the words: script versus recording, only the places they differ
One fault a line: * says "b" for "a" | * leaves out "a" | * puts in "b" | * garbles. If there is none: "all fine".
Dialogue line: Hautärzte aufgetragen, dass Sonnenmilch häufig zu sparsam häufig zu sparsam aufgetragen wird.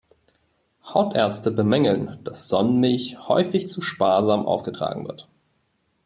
* says "bemängeln" for "aufgetragen"
* leaves out "häufig zu sparsam"